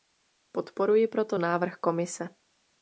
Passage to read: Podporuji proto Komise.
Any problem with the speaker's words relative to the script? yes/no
yes